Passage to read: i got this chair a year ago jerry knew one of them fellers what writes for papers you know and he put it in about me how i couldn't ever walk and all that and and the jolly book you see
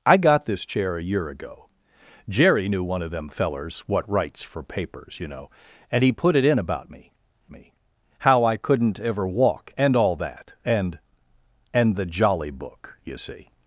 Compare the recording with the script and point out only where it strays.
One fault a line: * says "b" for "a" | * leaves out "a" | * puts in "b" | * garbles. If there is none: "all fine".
* puts in "me"